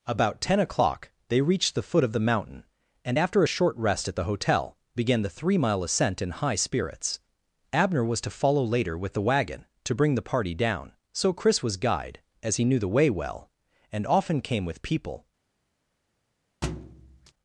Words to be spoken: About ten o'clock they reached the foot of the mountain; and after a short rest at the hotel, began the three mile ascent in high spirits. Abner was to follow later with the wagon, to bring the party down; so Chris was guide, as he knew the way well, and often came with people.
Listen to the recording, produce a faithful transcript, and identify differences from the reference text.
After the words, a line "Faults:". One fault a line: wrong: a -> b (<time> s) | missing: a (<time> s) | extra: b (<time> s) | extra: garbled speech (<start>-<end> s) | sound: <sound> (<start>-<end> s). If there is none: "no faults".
About ten o'clock they reached the foot of the mountain; and after a short rest at the hotel, began the three mile ascent in high spirits. Abner was to follow later with the wagon, to bring the party down; so Chris was guide, as he knew the way well, and often came with people.
Faults:
sound: thud (16.6-17.3 s)